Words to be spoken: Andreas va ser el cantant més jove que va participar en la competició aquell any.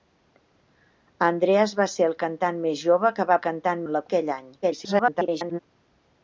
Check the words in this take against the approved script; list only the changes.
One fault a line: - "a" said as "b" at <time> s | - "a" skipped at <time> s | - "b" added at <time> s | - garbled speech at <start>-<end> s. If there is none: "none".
- "participar" said as "cantant" at 3.5 s
- "competició" skipped at 4.1 s
- garbled speech at 4.6-5.6 s